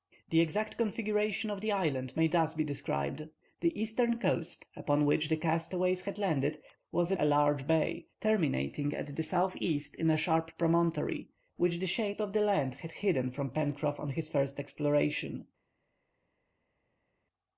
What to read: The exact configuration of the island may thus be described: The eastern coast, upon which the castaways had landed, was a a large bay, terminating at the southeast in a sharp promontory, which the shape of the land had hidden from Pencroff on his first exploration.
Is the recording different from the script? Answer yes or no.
no